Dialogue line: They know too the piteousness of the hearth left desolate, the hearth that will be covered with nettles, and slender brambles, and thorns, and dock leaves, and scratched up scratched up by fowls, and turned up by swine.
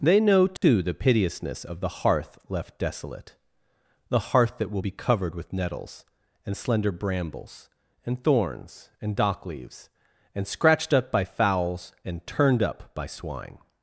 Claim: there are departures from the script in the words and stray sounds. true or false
true